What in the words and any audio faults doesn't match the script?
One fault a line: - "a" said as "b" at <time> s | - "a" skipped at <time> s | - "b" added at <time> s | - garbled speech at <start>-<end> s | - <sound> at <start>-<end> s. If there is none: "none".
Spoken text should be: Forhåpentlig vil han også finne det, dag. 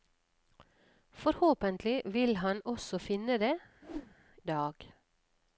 - whoosh at 3.8-4.2 s